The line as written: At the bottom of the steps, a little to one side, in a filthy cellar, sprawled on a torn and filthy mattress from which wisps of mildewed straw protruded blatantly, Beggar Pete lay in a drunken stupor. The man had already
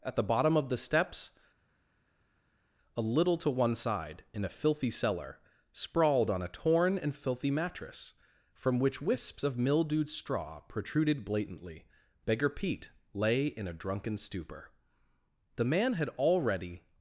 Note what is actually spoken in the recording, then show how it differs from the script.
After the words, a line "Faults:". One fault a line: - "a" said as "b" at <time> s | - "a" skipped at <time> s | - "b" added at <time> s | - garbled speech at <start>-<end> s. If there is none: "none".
At the bottom of the steps, a little to one side, in a filthy cellar, sprawled on a torn and filthy mattress from which wisps of mildewed straw protruded blatantly, Beggar Pete lay in a drunken stupor. The man had already
Faults:
none